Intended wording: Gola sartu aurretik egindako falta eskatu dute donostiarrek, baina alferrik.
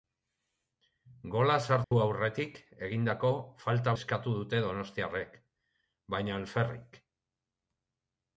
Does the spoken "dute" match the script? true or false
true